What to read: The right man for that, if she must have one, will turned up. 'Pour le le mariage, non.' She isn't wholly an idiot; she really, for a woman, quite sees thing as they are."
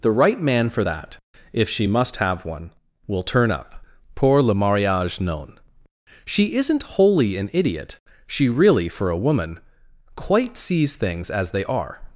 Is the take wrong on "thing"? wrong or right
wrong